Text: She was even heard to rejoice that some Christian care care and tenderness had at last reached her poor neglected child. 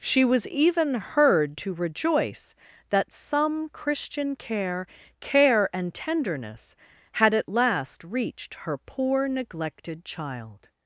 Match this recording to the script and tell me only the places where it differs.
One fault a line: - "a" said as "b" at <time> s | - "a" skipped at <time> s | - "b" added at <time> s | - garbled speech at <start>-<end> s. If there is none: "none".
none